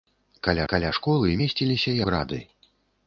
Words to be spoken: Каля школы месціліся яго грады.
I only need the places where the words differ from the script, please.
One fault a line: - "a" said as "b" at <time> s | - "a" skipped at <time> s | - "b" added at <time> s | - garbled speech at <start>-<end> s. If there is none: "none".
- "каля" added at 0.7 s
- "яго" skipped at 2.0 s